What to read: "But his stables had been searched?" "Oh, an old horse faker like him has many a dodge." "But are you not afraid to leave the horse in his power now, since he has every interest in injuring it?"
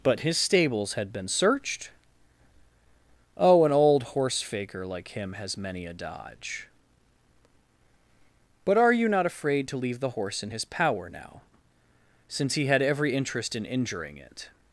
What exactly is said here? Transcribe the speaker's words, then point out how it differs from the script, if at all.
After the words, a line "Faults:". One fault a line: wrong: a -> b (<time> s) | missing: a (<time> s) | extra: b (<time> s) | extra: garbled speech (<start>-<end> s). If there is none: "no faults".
"But his stables had been searched?" "Oh, an old horse faker like him has many a dodge." "But are you not afraid to leave the horse in his power now, since he had every interest in injuring it?"
Faults:
wrong: has -> had (12.7 s)